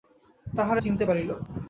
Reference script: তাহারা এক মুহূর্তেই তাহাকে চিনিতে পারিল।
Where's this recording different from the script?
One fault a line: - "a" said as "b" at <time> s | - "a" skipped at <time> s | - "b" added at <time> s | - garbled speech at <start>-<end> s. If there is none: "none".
- "এক মুহূর্তেই তাহাকে" skipped at 0.8 s